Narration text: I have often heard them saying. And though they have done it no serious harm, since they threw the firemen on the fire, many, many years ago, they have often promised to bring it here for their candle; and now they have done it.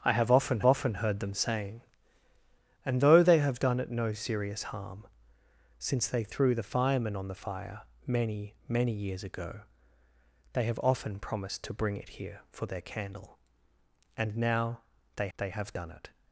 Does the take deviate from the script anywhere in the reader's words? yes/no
yes